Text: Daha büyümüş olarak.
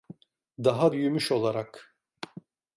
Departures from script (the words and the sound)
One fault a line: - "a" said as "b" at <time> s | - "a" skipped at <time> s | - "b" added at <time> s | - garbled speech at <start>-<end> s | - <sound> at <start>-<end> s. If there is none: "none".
none